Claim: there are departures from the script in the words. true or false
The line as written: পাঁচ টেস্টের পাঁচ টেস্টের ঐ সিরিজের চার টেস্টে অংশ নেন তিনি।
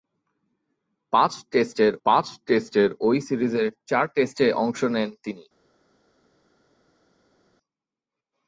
false